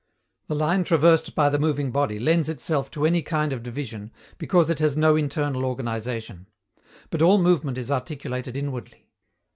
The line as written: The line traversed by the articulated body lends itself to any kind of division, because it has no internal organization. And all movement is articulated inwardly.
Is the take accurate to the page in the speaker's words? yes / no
no